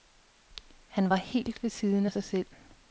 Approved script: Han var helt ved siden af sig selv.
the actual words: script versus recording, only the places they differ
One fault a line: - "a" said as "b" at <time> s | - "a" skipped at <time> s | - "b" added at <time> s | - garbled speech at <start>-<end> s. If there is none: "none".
none